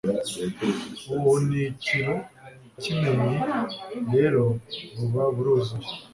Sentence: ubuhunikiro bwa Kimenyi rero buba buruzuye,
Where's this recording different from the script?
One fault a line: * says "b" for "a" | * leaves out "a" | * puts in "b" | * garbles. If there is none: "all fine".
* leaves out "bwa"